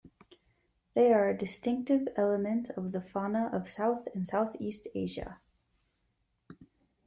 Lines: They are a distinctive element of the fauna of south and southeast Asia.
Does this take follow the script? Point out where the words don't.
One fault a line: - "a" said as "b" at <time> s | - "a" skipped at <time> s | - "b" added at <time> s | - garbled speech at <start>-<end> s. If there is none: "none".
none